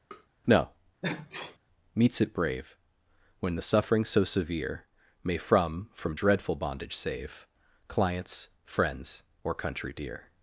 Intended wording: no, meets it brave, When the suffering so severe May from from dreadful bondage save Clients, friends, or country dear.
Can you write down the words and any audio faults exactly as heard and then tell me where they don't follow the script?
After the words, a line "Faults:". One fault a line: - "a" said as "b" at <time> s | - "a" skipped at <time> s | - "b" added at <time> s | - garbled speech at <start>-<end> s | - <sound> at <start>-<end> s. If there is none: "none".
no, meets it brave, When the suffering so severe May from from dreadful bondage save Clients, friends, or country dear.
Faults:
- tap at 0.1-0.3 s
- sneeze at 1.0-1.6 s